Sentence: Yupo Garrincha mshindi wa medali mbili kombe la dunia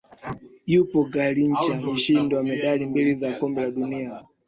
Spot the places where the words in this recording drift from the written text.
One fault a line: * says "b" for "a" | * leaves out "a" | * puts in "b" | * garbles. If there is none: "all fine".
* puts in "za"